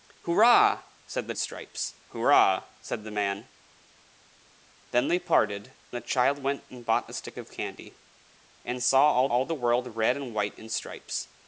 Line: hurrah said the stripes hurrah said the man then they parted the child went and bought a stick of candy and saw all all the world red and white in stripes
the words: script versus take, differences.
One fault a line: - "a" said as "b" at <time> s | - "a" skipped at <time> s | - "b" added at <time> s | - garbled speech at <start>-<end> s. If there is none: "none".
none